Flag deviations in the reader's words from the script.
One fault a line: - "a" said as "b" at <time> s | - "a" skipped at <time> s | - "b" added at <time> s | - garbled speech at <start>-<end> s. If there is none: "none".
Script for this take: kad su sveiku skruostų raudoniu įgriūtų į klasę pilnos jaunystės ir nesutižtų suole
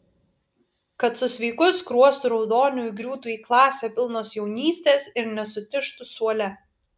none